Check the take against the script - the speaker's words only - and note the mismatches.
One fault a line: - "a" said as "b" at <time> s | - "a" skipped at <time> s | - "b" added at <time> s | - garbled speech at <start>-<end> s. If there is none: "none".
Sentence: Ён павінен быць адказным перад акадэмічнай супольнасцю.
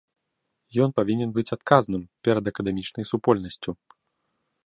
none